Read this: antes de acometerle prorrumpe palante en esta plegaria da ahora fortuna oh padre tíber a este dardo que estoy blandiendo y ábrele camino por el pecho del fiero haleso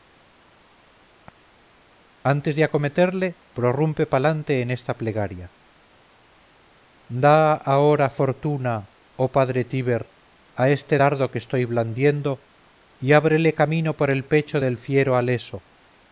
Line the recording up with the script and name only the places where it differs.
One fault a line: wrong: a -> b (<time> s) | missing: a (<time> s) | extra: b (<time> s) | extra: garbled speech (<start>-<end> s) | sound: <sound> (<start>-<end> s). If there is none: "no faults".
no faults